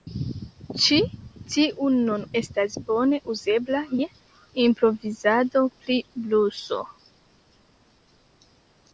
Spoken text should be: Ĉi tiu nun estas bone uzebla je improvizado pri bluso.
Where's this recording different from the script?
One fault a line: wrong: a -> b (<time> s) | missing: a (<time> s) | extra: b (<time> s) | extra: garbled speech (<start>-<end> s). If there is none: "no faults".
no faults